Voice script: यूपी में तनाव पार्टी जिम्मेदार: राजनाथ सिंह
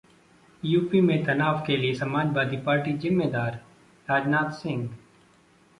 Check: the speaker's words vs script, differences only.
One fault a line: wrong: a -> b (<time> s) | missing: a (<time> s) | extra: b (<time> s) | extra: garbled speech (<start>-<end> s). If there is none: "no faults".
extra: के लिए समाजवादी (1.7 s)